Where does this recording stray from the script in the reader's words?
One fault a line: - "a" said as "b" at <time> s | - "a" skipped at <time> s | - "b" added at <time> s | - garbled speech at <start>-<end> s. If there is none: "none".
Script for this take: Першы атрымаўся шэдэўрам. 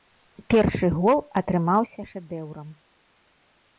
- "гол" added at 0.9 s